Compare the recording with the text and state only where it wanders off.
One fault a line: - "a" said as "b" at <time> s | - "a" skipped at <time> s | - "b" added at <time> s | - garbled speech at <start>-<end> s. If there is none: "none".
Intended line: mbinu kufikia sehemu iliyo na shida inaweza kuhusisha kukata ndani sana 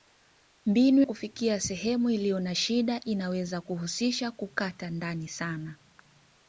none